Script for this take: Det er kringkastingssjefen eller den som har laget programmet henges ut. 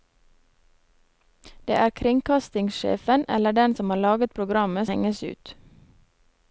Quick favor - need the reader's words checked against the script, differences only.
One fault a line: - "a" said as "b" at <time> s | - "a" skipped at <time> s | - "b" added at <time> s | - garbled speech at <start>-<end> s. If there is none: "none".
none